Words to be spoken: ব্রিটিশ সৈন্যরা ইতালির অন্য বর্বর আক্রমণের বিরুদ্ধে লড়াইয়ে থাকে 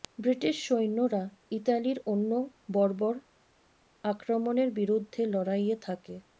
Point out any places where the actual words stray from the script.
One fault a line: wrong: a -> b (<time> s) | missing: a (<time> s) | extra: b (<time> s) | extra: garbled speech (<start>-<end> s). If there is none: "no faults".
no faults